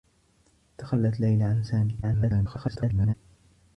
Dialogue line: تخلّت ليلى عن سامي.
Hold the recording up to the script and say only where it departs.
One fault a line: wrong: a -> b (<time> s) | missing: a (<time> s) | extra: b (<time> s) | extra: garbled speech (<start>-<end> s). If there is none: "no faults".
extra: garbled speech (2.0-3.1 s)